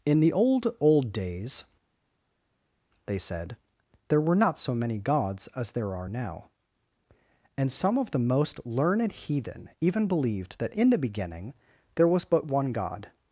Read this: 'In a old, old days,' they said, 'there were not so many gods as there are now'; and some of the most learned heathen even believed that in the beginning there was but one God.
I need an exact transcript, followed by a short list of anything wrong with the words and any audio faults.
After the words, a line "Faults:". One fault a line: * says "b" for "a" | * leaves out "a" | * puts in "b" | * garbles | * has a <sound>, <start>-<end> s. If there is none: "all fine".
'In the old, old days,' they said, 'there were not so many gods as there are now'; and some of the most learned heathen even believed that in the beginning there was but one God.
Faults:
* says "the" for "a"